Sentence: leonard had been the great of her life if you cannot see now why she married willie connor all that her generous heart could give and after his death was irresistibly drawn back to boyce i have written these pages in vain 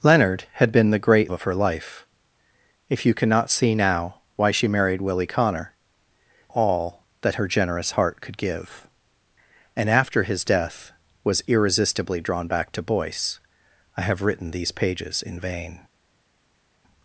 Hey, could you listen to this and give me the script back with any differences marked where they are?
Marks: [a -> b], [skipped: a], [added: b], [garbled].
leonard had been the great of her life if you cannot see now why she married willie connor all that her generous heart could give and after his death was irresistibly drawn back to boyce i have written these pages in vain